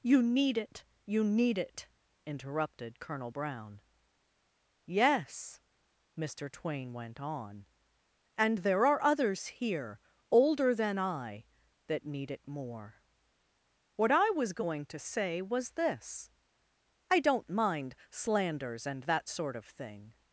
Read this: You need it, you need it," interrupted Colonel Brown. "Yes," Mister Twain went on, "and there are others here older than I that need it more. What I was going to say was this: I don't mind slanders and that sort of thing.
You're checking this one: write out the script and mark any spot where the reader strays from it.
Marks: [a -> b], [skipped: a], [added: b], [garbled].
You need it, you need it," interrupted Colonel Brown. "Yes," Mister Twain went on, "and there are others here older than I that need it more. What I was going to say was this: I don't mind slanders and that sort of thing.